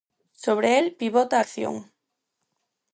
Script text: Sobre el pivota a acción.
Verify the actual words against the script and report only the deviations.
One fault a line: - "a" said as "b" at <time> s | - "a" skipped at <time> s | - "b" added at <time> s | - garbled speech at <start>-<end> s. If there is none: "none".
none